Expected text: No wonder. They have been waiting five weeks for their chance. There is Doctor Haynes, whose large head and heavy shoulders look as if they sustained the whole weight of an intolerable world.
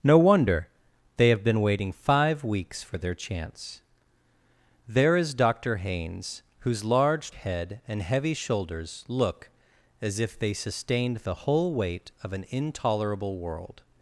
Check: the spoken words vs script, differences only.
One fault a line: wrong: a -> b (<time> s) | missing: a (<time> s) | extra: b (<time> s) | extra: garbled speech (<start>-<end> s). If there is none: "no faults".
no faults